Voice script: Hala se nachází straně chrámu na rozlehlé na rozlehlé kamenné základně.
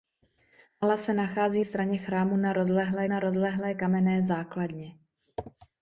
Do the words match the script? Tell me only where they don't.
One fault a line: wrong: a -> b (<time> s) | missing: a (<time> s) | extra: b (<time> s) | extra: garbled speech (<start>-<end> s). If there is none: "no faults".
no faults